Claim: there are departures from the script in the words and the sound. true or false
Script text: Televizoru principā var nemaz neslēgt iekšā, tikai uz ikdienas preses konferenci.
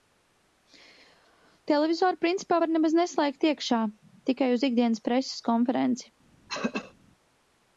true